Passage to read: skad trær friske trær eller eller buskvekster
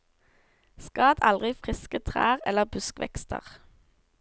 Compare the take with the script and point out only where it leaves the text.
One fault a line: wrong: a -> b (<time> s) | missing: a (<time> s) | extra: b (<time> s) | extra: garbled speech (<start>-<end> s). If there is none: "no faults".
wrong: trær -> aldri (1.3 s)
missing: eller (2.6 s)